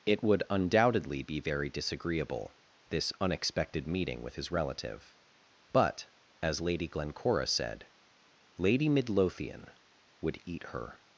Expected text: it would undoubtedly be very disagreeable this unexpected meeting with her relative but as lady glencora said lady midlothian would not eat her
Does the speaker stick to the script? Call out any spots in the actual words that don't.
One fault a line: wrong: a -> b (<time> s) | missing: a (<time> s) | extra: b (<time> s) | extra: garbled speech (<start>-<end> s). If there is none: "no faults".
wrong: her -> his (4.3 s)
missing: not (10.4 s)